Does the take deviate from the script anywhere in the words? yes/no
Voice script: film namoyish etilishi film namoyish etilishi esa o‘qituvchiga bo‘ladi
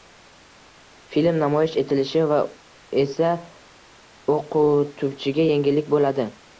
yes